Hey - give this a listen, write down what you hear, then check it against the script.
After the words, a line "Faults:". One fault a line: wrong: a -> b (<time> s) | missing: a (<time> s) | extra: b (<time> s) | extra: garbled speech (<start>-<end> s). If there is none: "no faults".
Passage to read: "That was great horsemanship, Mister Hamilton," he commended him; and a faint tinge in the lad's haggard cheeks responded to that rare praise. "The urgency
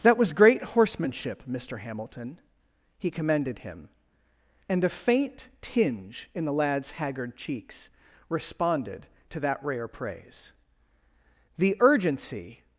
"That was great horsemanship, Mister Hamilton," he commended him; and a faint tinge in the lad's haggard cheeks responded to that rare praise. "The urgency
Faults:
no faults